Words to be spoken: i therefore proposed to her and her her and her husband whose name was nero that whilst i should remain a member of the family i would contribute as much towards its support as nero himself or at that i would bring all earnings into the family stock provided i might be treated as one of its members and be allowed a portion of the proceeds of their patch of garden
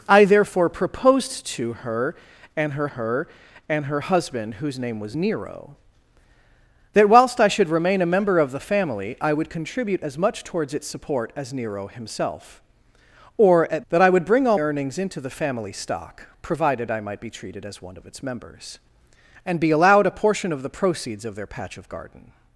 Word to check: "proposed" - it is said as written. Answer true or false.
true